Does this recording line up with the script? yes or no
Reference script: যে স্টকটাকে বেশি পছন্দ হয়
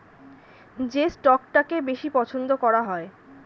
no